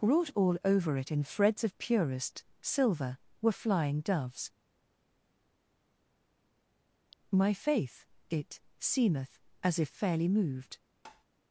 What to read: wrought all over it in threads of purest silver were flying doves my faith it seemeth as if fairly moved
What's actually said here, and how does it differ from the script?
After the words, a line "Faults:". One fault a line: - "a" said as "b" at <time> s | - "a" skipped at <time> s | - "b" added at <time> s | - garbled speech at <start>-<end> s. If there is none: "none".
wrought all over it in threads of purest silver were flying doves my faith it seemeth as if fairly moved
Faults:
none